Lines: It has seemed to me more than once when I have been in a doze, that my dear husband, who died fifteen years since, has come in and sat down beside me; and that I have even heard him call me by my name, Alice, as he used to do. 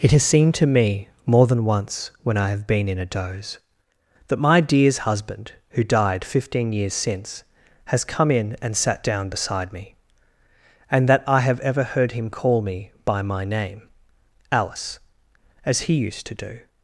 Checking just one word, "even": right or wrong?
wrong